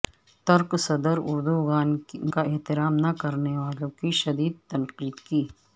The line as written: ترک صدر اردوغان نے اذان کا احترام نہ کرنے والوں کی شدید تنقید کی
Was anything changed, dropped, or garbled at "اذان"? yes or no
yes